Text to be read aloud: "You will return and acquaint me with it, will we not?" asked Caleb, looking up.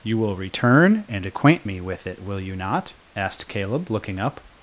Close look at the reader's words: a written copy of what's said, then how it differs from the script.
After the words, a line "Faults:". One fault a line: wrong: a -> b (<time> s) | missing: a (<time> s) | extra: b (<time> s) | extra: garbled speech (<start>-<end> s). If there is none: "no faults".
"You will return and acquaint me with it, will you not?" asked Caleb, looking up.
Faults:
wrong: we -> you (2.4 s)